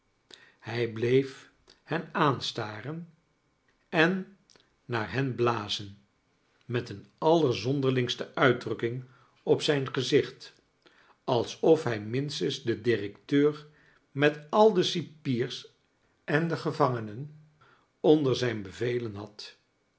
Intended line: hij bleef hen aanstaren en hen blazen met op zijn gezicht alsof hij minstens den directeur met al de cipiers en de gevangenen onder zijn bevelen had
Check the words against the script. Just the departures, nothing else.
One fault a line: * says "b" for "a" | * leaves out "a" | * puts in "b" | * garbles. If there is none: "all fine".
* puts in "naar"
* puts in "een allerzonderlingste uitdrukking"